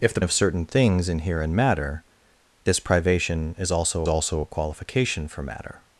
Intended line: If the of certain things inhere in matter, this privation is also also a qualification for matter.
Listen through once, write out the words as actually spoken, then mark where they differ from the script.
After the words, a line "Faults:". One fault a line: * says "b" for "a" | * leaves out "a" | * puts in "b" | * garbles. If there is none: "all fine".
If the of certain things inhere in matter, this privation is also also a qualification for matter.
Faults:
all fine